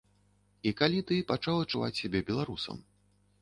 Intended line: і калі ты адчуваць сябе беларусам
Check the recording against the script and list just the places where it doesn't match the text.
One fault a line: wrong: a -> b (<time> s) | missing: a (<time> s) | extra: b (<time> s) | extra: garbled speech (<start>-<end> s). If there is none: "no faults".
extra: пачаў (1.3 s)